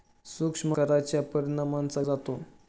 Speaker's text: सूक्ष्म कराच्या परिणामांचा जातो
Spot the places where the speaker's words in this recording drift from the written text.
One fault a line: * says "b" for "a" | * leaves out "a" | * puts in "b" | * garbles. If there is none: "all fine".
all fine